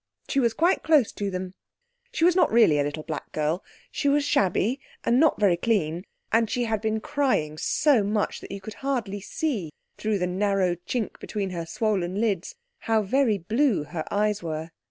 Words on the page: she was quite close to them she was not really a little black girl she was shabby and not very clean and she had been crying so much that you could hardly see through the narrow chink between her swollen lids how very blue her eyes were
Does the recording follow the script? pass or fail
pass